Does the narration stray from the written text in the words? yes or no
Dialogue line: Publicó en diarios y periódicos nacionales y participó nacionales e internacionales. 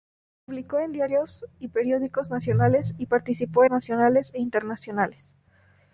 no